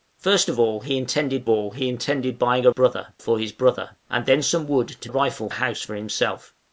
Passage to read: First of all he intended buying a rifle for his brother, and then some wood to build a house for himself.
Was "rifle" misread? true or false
true